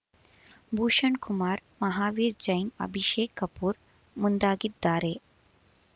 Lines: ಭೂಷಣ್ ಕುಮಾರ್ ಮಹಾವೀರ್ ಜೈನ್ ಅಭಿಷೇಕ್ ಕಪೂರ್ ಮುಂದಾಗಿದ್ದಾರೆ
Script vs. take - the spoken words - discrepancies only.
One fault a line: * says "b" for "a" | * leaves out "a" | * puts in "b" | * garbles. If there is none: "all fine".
all fine